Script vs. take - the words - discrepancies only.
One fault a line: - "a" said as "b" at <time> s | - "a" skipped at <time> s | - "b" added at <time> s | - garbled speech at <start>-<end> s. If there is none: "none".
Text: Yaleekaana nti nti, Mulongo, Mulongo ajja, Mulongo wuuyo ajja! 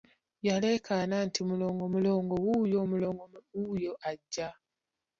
- "nti" skipped at 1.4 s
- "ajja" said as "wuuyo" at 2.4 s